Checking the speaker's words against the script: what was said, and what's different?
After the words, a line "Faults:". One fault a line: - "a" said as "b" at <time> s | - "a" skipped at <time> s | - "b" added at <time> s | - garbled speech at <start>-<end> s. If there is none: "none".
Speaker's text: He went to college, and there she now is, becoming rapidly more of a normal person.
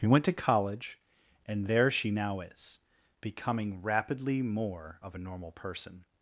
He went to college, and there she now is, becoming rapidly more of a normal person.
Faults:
none